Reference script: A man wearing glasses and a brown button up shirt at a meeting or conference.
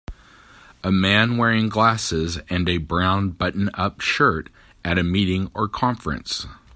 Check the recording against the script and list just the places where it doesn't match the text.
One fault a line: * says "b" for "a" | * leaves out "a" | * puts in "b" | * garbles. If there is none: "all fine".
all fine